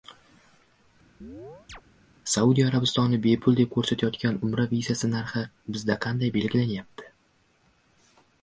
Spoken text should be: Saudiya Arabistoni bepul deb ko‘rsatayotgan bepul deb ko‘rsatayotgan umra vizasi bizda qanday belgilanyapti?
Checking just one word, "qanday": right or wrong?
right